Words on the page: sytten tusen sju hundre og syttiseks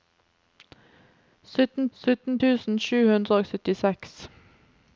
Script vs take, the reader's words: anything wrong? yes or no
yes